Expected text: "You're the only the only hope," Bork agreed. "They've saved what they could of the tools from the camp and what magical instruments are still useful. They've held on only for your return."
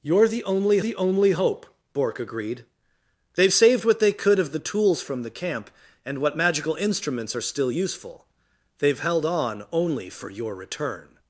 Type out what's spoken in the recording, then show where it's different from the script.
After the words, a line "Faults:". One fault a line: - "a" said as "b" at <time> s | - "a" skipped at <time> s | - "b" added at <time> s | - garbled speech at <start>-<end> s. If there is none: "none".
"You're the only the only hope," Bork agreed. "They've saved what they could of the tools from the camp and what magical instruments are still useful. They've held on only for your return."
Faults:
none